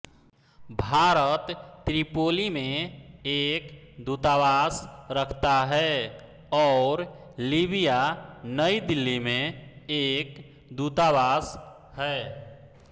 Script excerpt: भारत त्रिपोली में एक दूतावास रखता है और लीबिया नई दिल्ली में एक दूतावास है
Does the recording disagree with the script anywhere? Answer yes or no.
no